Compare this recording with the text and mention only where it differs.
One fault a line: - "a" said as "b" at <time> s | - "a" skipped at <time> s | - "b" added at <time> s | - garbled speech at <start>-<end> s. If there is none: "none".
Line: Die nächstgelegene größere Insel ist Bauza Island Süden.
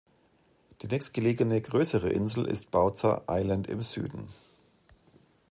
- "im" added at 3.7 s